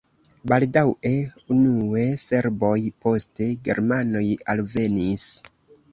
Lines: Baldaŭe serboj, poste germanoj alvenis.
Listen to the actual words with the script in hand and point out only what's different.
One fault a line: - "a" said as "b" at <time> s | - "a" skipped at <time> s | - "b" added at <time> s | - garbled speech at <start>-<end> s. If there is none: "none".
- "unue" added at 1.6 s